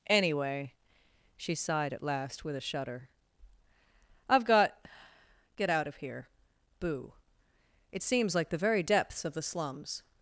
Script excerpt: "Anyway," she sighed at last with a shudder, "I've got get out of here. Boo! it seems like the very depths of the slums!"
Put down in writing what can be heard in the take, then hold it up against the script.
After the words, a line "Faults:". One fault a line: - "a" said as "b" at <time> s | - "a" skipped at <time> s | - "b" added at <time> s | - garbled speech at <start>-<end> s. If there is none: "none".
"Anyway," she sighed at last with a shudder, "I've got get out of here. Boo! it seems like the very depths of the slums!"
Faults:
none